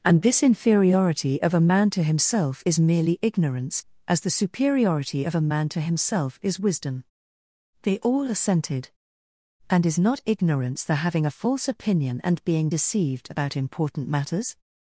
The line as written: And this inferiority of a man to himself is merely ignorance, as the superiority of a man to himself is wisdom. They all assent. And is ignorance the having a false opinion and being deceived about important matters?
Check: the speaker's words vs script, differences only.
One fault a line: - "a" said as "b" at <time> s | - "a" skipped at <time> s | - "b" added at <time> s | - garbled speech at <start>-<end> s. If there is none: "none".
- "assent" said as "assented" at 8.3 s
- "not" added at 10.0 s